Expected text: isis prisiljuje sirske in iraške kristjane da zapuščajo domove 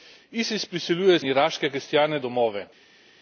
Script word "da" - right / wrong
wrong